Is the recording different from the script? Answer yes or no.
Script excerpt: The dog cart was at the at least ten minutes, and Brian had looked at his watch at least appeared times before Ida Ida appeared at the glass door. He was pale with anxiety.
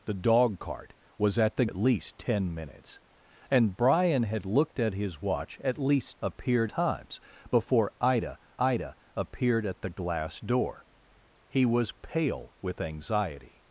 no